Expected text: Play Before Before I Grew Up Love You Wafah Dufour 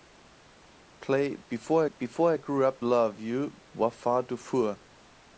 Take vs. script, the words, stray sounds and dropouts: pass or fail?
pass